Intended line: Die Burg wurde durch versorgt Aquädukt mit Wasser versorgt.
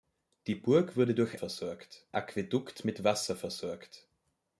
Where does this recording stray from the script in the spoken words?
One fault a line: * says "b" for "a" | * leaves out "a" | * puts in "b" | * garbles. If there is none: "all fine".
all fine